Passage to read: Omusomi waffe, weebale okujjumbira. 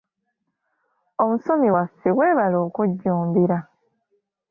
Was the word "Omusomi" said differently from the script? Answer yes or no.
no